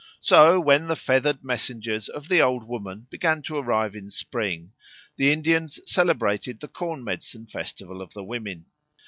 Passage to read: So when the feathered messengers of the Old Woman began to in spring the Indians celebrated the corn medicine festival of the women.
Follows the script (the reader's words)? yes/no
no